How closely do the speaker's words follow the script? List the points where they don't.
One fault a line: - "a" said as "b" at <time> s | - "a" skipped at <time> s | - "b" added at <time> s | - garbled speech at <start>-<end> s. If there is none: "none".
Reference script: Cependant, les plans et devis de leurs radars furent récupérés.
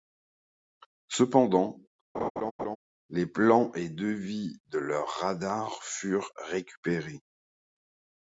none